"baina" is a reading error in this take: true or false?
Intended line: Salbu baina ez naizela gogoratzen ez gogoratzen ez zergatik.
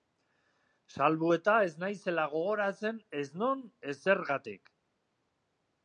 true